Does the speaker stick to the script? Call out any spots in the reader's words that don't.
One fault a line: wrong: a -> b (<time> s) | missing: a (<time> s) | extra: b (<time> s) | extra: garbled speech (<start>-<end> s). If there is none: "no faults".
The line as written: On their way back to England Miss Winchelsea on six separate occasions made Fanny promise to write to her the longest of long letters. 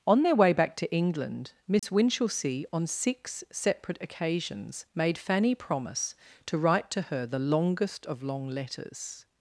no faults